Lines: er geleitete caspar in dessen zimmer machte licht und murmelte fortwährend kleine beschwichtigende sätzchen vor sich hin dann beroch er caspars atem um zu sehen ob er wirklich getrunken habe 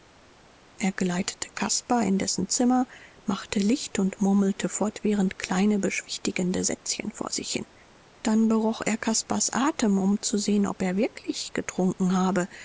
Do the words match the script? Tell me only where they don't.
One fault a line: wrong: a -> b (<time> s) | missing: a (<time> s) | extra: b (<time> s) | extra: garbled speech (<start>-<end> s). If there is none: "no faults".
no faults